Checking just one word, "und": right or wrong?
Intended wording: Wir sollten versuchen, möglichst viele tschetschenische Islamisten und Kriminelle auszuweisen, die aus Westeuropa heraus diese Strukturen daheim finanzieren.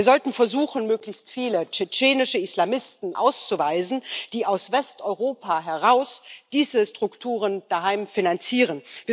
wrong